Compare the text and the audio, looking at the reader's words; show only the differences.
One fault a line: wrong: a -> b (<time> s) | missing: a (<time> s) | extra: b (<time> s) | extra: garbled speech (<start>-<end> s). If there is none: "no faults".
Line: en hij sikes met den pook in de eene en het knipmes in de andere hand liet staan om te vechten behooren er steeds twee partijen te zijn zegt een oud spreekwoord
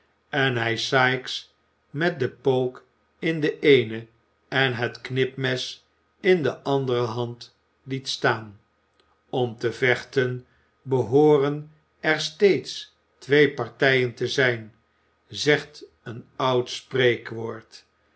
no faults